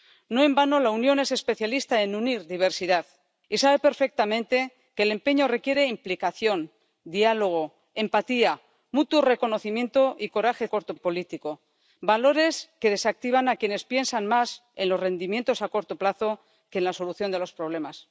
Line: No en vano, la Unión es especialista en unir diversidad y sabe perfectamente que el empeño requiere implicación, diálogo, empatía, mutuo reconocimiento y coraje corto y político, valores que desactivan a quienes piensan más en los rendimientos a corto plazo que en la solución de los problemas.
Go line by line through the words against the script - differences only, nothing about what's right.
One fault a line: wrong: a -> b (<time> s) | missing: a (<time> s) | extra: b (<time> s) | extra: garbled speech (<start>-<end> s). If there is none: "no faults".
no faults